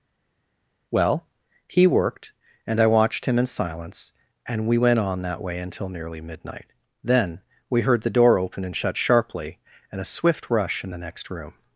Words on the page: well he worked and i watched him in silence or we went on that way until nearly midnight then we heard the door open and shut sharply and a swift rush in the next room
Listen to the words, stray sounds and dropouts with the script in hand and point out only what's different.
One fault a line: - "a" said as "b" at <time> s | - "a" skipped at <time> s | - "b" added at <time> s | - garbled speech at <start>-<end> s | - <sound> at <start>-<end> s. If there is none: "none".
- "or" said as "and" at 4.5 s